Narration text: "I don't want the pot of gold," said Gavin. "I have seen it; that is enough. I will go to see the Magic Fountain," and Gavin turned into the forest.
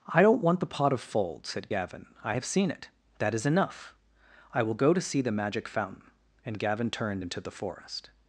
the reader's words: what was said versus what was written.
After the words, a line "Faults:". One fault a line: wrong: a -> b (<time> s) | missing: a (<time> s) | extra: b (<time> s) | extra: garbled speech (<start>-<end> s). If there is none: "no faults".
"I don't want the pot of fold," said Gavin. "I have seen it; that is enough. I will go to see the Magic Fountain," and Gavin turned into the forest.
Faults:
wrong: gold -> fold (1.0 s)